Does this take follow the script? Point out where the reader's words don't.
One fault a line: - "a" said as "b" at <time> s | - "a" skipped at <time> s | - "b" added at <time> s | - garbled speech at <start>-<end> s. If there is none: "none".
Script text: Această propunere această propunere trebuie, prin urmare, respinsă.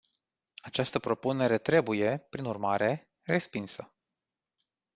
- "această propunere" skipped at 1.6 s